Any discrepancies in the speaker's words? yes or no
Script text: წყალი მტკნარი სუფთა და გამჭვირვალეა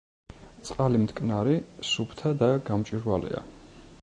no